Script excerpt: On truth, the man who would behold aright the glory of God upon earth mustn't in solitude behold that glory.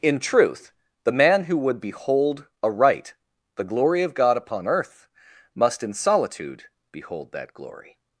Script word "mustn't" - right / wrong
wrong